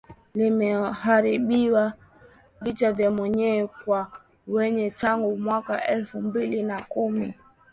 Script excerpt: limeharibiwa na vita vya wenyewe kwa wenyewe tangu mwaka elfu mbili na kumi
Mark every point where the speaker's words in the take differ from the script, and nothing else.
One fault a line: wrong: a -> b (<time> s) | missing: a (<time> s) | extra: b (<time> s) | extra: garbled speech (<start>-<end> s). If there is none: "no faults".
missing: na (1.9 s)